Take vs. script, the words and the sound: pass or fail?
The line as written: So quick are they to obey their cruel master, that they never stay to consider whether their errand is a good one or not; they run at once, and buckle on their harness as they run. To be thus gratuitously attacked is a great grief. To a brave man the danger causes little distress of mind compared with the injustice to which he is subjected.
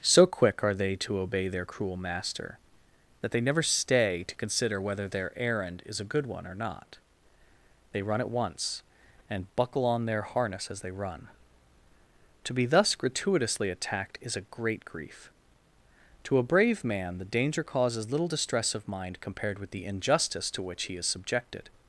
pass